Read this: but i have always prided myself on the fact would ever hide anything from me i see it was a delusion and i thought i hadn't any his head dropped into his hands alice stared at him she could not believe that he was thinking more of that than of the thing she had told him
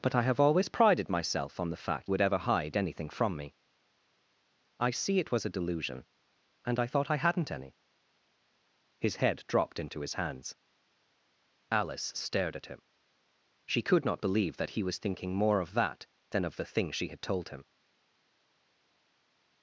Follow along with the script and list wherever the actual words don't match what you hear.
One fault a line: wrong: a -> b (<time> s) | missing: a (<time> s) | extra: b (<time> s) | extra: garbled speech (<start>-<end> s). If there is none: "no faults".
no faults